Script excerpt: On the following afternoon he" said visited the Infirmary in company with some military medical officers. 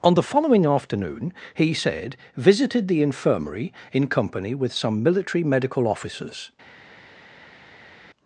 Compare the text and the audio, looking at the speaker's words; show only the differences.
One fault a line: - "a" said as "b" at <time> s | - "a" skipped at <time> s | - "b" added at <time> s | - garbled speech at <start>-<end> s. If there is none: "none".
none